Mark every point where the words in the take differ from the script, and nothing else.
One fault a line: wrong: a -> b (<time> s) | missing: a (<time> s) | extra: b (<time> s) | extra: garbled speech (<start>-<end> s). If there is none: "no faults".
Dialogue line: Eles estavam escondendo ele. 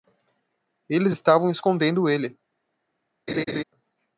no faults